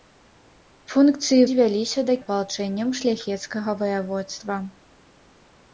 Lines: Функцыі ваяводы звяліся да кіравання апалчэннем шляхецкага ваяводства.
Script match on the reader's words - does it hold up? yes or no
no